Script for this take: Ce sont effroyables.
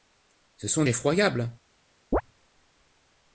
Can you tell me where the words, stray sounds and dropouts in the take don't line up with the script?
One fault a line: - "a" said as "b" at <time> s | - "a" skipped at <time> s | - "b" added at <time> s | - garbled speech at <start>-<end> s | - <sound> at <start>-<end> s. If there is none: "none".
- chirp at 2.1-2.2 s